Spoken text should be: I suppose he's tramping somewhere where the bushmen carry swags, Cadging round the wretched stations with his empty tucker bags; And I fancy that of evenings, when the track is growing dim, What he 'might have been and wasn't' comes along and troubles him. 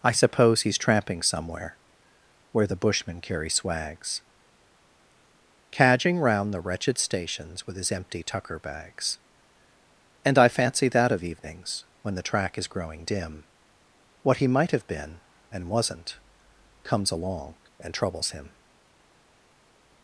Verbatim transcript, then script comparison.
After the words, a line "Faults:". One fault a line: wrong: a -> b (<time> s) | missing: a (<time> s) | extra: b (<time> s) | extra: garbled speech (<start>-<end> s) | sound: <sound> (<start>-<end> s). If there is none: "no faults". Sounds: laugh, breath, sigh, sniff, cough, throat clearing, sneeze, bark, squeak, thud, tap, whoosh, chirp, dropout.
I suppose he's tramping somewhere where the bushmen carry swags, Cadging round the wretched stations with his empty tucker bags; And I fancy that of evenings, when the track is growing dim, What he 'might have been and wasn't' comes along and troubles him.
Faults:
no faults